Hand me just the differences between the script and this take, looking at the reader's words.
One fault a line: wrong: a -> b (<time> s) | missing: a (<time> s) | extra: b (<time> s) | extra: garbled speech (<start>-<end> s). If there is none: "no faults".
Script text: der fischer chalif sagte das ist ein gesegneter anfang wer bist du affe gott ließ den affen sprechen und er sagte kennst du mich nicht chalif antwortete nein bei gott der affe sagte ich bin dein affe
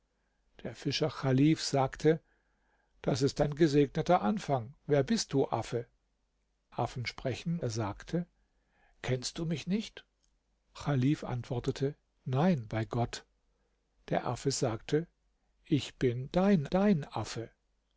missing: gott ließ den (5.8 s)
missing: und (7.6 s)
extra: dein (16.7 s)